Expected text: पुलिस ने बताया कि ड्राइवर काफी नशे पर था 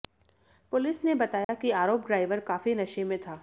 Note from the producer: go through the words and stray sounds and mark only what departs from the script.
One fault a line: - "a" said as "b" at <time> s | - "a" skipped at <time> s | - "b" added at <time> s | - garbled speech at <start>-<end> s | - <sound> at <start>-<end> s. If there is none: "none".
- dropout at 1.4-1.5 s
- "आरोप" added at 1.8 s
- "पर" said as "में" at 3.0 s